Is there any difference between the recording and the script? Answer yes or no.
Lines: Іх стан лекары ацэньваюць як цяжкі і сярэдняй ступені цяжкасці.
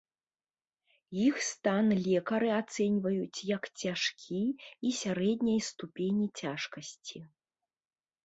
no